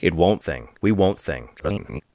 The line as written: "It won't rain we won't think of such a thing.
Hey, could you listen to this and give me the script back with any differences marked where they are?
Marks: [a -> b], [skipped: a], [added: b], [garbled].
"It won't [rain -> thing] we won't [skipped: think of such] a thing. [garbled]